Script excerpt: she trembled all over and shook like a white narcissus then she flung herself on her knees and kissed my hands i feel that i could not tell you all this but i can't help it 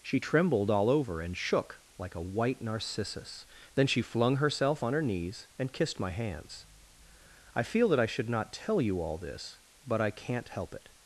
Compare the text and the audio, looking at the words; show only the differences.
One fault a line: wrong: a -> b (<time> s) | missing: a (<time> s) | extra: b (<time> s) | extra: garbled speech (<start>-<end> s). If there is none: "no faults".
wrong: could -> should (8.0 s)